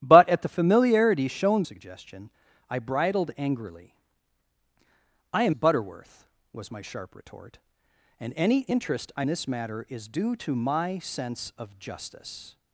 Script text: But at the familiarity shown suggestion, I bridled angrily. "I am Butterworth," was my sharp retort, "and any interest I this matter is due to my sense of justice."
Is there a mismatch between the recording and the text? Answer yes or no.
no